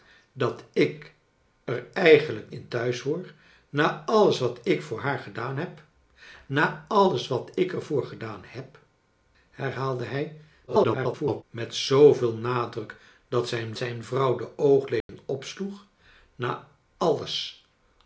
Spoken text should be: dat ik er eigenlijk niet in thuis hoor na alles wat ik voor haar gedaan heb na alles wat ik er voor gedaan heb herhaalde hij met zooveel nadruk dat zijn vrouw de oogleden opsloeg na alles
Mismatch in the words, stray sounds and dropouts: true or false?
true